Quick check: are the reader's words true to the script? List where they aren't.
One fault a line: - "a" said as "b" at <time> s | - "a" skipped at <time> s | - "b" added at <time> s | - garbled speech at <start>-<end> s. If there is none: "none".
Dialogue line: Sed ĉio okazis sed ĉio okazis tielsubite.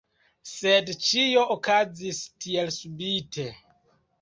- "sed ĉio okazis" skipped at 2.2 s